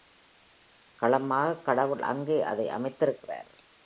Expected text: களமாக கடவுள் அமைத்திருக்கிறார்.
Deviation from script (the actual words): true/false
true